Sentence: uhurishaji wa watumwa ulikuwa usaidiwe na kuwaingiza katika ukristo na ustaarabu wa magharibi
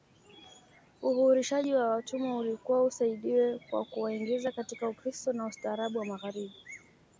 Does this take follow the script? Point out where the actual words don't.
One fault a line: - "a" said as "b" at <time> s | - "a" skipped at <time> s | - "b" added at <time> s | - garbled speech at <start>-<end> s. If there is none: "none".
- "na" said as "kwa" at 3.7 s